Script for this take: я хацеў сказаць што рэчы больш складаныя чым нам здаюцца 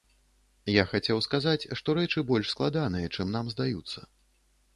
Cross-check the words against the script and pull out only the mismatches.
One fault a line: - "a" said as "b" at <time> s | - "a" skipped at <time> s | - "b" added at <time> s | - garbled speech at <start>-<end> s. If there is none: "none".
none